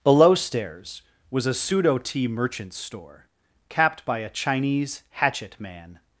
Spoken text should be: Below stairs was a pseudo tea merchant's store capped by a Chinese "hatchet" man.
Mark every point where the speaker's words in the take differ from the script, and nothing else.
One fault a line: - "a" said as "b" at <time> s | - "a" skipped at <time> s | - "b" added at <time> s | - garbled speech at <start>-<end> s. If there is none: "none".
none